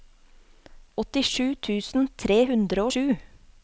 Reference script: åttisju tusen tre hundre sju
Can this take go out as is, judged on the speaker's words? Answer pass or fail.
pass